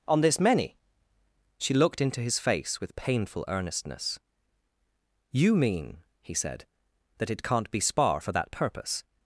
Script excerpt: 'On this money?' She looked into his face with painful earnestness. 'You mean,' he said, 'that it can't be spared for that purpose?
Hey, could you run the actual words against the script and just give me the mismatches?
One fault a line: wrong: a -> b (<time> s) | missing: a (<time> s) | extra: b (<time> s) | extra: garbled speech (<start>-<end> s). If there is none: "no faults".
wrong: money -> many (0.4 s)
wrong: spared -> spar (7.8 s)